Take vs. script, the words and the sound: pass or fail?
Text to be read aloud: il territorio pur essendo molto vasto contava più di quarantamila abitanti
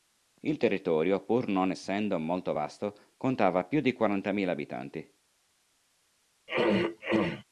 fail